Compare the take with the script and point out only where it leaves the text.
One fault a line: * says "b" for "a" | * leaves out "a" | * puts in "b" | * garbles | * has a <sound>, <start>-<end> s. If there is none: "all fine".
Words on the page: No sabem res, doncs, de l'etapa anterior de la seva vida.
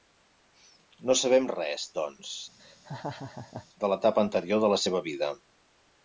* has a laugh, 2.6-3.7 s